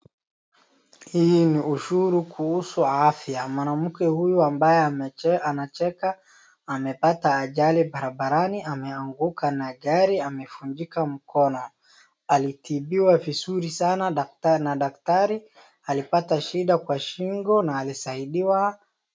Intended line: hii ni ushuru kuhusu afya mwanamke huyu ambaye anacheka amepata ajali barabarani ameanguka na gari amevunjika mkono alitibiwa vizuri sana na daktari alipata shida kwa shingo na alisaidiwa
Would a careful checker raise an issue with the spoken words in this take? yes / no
no